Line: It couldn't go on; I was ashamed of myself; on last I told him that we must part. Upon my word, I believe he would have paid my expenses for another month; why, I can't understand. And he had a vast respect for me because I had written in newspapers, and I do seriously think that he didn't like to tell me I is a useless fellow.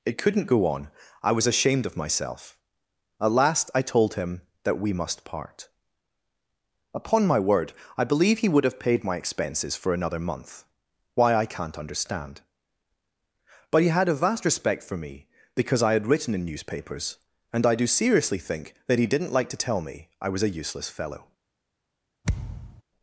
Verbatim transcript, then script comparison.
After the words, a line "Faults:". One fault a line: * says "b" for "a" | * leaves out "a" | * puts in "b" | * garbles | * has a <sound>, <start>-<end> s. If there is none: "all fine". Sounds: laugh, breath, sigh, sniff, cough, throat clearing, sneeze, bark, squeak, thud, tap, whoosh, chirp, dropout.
It couldn't go on; I was ashamed of myself; at last I told him that we must part. Upon my word, I believe he would have paid my expenses for another month; why, I can't understand. But he had a vast respect for me because I had written in newspapers, and I do seriously think that he didn't like to tell me I was a useless fellow.
Faults:
* says "at" for "on"
* says "But" for "And"
* says "was" for "is"
* has a thud, 22.2-22.8 s